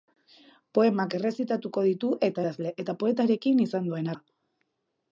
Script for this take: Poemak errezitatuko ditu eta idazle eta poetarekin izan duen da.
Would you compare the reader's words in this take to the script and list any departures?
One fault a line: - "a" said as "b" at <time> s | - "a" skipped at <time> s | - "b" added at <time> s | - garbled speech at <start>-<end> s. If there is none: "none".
none